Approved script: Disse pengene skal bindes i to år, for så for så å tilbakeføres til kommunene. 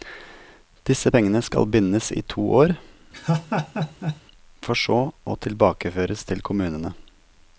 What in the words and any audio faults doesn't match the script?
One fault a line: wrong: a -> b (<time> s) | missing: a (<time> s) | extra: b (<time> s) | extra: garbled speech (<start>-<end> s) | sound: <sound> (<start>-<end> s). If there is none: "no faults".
sound: laugh (3.1-4.2 s)
missing: for så (5.0 s)